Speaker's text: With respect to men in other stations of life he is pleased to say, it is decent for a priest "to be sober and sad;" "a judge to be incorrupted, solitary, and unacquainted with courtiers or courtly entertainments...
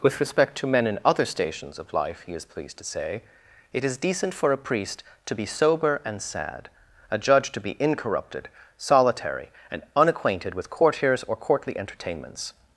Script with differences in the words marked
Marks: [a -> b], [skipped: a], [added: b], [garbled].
With respect to men in other stations of life he is pleased to say, it is decent for a priest "to be sober and sad;" "a judge to be incorrupted, solitary, and unacquainted with courtiers or courtly entertainments...